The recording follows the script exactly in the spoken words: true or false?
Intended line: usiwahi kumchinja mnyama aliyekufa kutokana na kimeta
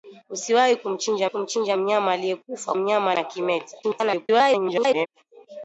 false